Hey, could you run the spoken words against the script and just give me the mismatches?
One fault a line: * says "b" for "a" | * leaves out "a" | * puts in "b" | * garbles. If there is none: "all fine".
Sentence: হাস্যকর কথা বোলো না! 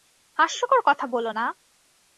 all fine